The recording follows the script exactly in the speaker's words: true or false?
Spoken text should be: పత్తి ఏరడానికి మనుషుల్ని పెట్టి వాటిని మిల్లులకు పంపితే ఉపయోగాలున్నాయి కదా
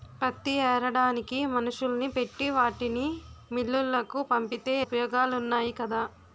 true